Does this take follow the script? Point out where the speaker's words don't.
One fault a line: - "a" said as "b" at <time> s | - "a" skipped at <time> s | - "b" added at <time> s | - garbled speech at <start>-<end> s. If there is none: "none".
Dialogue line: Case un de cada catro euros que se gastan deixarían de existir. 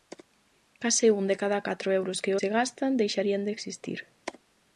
none